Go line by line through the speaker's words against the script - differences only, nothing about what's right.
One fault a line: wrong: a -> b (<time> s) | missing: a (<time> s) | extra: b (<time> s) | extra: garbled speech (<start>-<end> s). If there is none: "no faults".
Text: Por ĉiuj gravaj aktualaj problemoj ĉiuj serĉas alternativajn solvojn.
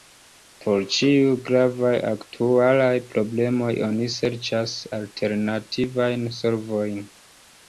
wrong: ĉiuj -> oni (3.9 s)